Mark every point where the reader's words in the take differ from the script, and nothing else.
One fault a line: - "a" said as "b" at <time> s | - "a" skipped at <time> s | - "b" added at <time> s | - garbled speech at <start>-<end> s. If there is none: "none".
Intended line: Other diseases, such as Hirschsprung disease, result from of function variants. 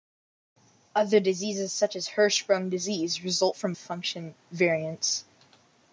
none